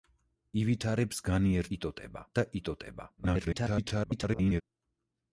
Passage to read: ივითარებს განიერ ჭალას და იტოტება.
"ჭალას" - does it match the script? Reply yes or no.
no